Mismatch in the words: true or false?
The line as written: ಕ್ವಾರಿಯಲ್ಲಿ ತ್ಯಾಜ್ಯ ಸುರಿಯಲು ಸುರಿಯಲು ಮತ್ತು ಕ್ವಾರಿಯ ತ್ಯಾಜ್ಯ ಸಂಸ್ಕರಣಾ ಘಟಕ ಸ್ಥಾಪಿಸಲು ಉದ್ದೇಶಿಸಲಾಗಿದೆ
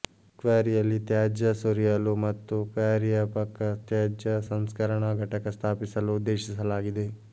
true